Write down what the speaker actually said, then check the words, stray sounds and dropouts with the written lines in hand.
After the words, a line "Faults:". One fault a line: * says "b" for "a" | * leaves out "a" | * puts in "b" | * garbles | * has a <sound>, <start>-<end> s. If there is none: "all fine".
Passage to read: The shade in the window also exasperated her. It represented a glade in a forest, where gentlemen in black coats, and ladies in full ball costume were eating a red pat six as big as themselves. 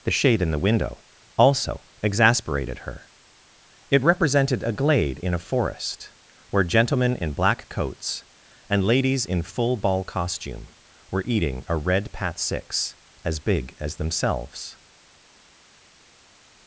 The shade in the window also exasperated her. It represented a glade in a forest, where gentlemen in black coats, and ladies in full ball costume were eating a red pat six as big as themselves.
Faults:
all fine